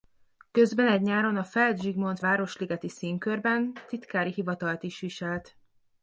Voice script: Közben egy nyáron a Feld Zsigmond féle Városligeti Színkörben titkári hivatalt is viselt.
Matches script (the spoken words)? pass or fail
fail